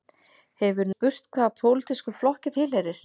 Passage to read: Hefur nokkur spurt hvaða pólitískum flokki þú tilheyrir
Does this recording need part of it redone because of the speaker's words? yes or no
yes